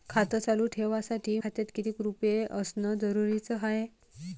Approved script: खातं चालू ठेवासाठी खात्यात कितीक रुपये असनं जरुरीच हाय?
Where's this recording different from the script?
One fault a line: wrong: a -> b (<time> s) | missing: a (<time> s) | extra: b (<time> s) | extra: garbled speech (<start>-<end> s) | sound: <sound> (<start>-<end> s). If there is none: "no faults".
no faults